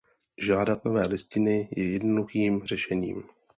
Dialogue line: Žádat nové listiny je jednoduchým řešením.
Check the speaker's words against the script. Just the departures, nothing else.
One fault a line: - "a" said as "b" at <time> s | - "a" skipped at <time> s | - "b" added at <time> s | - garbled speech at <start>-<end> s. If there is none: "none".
none